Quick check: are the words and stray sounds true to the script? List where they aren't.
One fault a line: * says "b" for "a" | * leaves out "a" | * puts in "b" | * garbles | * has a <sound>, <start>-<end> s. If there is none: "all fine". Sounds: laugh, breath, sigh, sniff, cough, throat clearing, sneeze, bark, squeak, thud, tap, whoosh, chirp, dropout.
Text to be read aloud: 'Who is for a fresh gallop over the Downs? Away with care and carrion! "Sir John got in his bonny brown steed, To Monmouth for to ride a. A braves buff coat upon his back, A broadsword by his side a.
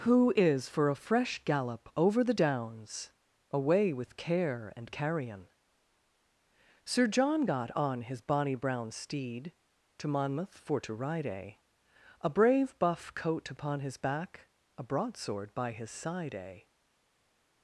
* says "on" for "in"
* says "brave" for "braves"